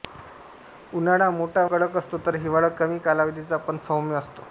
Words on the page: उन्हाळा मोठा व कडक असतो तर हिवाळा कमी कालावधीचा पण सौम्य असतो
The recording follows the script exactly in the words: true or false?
false